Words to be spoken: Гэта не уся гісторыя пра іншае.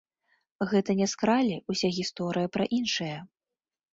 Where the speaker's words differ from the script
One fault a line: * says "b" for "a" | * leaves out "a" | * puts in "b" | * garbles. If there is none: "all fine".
* puts in "скралі"